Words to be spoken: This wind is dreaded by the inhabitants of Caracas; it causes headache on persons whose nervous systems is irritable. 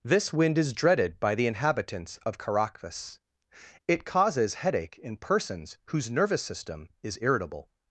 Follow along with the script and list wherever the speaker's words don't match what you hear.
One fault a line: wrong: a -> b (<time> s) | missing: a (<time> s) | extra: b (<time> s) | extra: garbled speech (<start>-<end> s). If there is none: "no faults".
wrong: on -> in (5.0 s)
wrong: systems -> system (6.4 s)